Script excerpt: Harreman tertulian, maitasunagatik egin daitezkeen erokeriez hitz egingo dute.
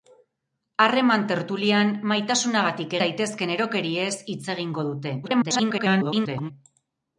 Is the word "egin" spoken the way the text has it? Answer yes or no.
no